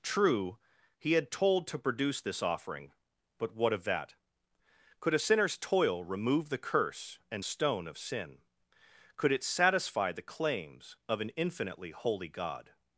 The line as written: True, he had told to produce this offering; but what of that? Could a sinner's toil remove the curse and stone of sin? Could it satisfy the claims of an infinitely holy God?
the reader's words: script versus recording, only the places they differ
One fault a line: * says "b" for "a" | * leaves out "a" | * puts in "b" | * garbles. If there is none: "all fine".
all fine